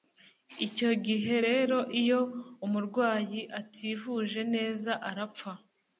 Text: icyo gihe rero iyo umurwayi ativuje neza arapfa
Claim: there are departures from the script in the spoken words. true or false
false